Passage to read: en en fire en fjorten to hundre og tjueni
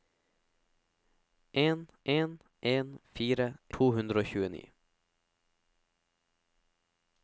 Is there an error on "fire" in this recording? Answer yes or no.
yes